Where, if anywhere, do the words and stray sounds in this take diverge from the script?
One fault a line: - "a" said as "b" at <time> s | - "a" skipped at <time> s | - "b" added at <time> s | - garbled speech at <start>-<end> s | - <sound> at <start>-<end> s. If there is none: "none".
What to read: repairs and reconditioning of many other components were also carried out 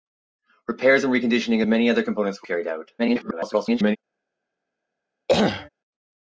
- "also" skipped at 2.5 s
- garbled speech at 3.0-4.0 s
- throat clearing at 5.3-5.7 s